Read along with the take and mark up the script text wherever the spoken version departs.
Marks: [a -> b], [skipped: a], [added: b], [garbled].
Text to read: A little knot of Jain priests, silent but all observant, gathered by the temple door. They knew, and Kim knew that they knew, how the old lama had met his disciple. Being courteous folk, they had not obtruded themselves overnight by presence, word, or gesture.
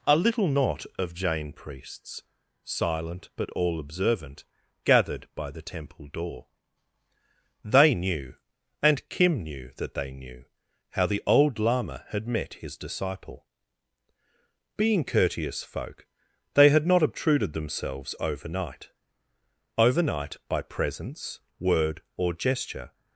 A little knot of Jain priests, silent but all observant, gathered by the temple door. They knew, and Kim knew that they knew, how the old lama had met his disciple. Being courteous folk, they had not obtruded themselves overnight [added: overnight] by presence, word, or gesture.